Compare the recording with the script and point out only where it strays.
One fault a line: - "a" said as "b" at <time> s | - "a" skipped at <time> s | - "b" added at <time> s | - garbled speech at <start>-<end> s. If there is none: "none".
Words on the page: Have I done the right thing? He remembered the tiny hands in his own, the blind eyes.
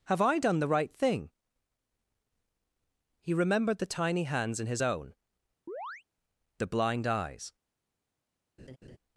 none